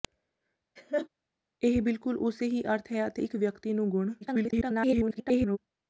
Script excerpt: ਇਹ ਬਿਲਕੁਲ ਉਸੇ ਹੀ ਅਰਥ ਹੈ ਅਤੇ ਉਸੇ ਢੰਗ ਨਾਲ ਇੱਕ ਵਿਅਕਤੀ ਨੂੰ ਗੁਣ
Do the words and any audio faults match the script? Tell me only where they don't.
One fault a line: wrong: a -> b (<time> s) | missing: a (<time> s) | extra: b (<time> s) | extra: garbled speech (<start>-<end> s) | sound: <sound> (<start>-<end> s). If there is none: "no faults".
sound: laugh (0.8-1.1 s)
missing: ਉਸੇ ਢੰਗ ਨਾਲ (3.2 s)
extra: garbled speech (4.2-5.6 s)